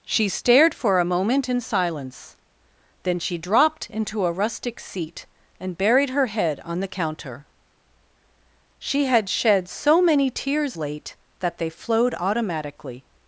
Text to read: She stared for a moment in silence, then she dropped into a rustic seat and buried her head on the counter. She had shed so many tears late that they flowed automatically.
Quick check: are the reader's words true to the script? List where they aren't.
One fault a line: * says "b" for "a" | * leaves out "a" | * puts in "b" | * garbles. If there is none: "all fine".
all fine